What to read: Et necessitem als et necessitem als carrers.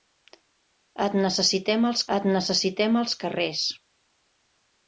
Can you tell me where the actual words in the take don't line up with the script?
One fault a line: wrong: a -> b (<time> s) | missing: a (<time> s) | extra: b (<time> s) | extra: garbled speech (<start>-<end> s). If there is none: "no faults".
no faults